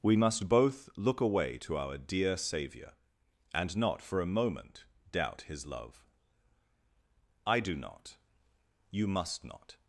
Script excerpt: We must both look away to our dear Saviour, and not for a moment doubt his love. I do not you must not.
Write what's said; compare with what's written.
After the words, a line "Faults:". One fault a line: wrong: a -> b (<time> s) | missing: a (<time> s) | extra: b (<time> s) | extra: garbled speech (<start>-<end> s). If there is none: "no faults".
We must both look away to our dear Saviour, and not for a moment doubt his love. I do not you must not.
Faults:
no faults